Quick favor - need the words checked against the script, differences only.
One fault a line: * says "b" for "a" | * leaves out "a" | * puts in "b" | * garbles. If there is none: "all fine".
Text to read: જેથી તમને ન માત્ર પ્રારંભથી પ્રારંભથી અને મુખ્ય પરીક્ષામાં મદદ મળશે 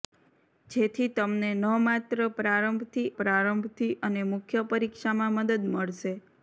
all fine